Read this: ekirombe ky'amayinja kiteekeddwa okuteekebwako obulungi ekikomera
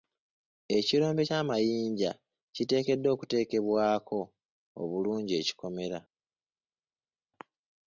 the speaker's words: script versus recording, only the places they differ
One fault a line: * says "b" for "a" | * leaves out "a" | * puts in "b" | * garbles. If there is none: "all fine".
all fine